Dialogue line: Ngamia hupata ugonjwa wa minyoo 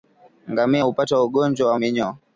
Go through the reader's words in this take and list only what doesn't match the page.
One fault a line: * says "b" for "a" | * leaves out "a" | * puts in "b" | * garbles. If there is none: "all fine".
all fine